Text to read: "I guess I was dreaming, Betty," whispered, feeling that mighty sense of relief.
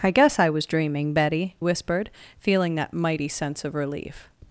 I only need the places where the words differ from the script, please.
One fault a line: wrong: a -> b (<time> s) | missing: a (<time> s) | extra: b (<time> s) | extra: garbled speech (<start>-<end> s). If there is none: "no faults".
no faults